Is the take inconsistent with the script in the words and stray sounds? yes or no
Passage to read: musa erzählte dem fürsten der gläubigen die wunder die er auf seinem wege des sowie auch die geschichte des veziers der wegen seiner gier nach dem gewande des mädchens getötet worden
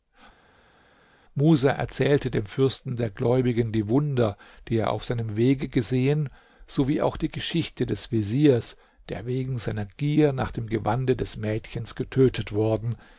yes